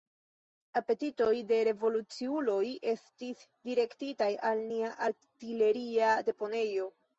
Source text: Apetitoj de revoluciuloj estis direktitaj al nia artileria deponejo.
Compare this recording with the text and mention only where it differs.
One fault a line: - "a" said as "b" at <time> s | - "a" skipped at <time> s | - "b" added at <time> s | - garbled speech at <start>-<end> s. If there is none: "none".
none